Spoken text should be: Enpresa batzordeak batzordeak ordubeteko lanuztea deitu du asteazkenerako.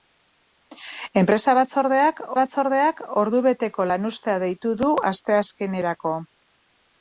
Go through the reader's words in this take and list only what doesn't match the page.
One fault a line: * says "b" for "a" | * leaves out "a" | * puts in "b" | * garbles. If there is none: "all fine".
all fine